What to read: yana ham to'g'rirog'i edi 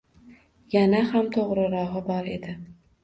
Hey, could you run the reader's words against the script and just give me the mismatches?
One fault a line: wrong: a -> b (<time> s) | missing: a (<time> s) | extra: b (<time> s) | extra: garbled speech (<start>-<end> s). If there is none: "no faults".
extra: bor (2.1 s)